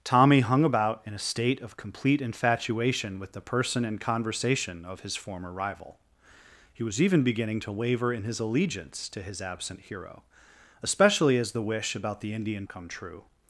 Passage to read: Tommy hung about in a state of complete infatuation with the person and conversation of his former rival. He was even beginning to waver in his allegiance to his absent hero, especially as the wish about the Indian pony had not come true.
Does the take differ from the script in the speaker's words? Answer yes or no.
yes